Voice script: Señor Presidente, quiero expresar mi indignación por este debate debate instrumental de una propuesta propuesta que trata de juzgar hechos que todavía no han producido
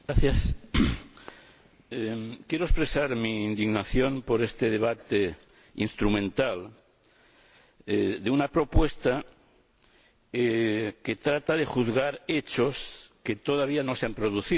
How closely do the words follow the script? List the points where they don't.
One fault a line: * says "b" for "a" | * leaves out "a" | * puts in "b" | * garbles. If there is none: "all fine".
* leaves out "debate"
* leaves out "propuesta"
* puts in "se"